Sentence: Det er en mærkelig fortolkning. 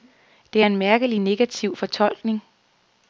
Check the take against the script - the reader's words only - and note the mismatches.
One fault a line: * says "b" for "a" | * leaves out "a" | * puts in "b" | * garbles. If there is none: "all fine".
* puts in "negativ"